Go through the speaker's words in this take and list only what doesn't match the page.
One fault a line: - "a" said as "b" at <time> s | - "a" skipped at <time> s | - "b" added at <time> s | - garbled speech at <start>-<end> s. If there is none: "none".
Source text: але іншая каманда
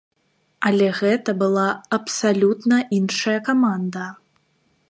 - "гэта была абсалютна" added at 1.0 s